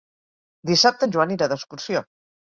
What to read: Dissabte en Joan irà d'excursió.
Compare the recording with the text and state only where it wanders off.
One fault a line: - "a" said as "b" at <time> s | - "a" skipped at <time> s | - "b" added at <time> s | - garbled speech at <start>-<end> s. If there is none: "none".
none